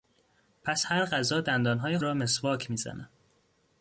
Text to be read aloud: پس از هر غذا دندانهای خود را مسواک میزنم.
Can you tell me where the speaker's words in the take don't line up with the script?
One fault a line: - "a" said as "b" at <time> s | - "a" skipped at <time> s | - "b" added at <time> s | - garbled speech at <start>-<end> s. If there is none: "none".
- "از" skipped at 0.8 s
- "خود" skipped at 2.0 s